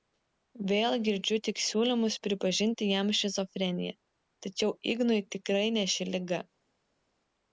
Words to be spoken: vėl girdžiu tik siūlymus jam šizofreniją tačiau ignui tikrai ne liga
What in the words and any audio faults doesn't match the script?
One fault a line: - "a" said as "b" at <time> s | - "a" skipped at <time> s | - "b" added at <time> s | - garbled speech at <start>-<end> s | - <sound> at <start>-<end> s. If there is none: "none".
- "pripažinti" added at 2.3 s
- "ši" added at 6.0 s